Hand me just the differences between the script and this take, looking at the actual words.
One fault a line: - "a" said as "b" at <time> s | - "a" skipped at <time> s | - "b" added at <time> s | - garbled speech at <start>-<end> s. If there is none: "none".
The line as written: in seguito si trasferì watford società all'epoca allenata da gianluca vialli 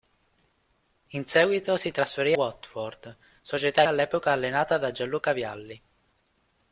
none